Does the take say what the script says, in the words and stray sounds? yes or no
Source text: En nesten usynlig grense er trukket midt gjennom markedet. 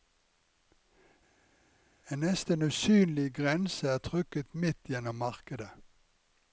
yes